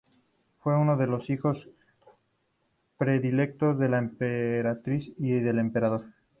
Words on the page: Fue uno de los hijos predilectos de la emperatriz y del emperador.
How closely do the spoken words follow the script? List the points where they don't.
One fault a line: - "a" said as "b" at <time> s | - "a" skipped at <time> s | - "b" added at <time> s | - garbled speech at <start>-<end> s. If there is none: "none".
none